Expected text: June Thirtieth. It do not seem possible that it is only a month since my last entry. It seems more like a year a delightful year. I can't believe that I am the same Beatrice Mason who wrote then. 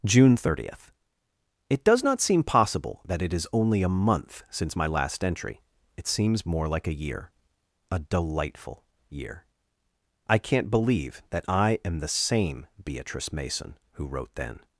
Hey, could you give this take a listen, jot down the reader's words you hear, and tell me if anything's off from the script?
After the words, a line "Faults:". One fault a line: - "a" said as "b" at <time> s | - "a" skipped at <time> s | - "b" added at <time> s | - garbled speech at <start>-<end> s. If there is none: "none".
June Thirtieth. It does not seem possible that it is only a month since my last entry. It seems more like a year a delightful year. I can't believe that I am the same Beatrice Mason who wrote then.
Faults:
- "do" said as "does" at 1.8 s